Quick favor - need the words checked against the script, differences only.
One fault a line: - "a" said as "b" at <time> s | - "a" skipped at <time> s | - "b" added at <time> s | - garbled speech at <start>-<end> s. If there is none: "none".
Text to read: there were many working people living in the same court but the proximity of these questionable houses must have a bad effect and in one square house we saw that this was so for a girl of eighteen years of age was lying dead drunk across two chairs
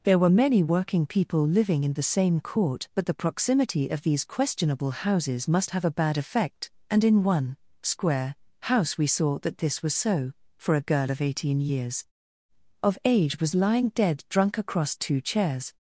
none